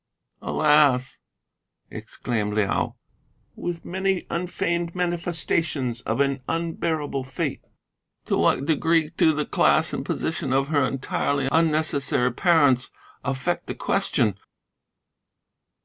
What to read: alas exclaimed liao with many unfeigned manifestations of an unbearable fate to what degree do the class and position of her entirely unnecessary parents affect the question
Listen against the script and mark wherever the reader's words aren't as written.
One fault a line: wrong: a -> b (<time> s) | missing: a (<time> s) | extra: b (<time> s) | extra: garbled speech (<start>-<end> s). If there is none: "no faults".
no faults